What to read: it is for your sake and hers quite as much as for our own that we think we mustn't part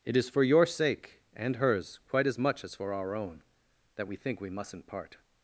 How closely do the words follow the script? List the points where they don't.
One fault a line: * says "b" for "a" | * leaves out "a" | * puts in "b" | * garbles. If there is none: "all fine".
all fine